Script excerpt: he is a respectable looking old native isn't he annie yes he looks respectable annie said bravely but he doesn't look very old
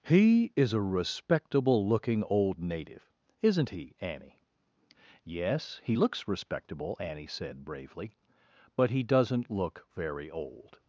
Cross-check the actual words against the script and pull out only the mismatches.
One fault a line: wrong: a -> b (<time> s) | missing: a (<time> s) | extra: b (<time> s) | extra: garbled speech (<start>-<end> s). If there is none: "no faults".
no faults